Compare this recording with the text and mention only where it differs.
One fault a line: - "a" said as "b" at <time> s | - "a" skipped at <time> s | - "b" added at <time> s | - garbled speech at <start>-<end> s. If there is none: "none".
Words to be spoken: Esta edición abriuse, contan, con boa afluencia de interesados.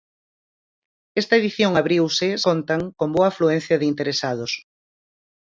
none